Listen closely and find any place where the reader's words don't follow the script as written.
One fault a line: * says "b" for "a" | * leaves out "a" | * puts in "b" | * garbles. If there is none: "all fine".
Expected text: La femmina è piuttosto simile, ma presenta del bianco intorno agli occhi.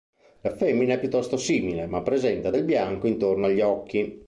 all fine